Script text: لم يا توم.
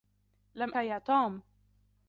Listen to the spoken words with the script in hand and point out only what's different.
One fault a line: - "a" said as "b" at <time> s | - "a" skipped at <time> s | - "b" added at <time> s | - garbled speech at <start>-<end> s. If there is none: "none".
none